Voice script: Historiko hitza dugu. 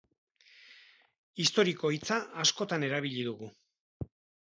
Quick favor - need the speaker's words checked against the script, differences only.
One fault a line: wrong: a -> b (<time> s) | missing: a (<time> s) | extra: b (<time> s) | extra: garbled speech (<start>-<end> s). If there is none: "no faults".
extra: askotan erabili (2.5 s)